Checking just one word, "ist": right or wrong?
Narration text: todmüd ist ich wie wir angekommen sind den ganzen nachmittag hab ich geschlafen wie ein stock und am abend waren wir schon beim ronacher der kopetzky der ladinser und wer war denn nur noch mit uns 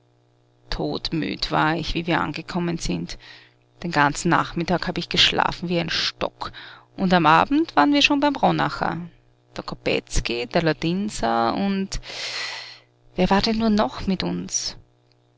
wrong